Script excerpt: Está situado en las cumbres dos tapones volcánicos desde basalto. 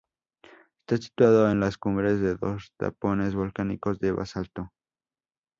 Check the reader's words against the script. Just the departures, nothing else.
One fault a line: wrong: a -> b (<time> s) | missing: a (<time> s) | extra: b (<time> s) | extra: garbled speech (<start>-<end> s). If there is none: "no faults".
extra: de (2.2 s)
wrong: desde -> de (4.0 s)